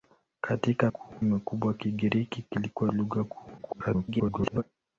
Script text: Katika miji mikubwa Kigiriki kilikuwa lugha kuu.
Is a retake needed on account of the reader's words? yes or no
yes